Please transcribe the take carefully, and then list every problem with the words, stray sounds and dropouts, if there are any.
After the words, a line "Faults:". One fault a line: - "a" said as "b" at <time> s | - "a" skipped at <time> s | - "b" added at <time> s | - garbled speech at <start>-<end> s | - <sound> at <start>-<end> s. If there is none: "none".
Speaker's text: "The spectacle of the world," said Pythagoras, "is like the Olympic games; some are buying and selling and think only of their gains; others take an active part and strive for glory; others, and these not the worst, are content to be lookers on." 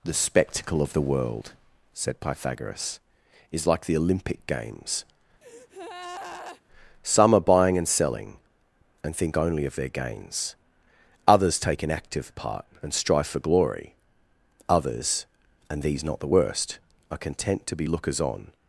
"The spectacle of the world," said Pythagoras, "is like the Olympic games; some are buying and selling and think only of their gains; others take an active part and strive for glory; others, and these not the worst, are content to be lookers on."
Faults:
- breath at 5.4-6.6 s